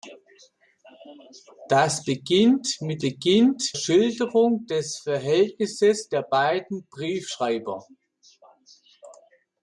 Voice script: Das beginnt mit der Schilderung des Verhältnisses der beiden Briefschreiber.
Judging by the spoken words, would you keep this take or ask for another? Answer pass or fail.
fail